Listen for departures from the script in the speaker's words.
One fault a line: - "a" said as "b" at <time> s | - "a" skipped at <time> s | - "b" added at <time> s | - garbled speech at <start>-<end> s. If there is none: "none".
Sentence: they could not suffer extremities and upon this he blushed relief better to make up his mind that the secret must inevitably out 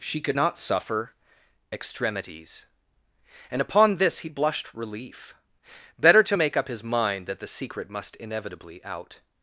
- "they" said as "she" at 0.0 s